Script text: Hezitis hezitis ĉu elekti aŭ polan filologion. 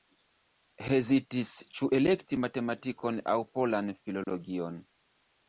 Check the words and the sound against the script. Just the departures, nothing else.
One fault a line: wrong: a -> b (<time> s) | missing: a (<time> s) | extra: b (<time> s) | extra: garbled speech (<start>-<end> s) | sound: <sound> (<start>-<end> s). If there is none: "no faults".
missing: hezitis (1.5 s)
extra: matematikon (2.4 s)
sound: dropout (4.2-4.3 s)